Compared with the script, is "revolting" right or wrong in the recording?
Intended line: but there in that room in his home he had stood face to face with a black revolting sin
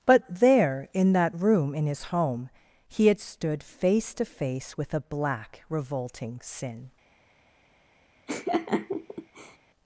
right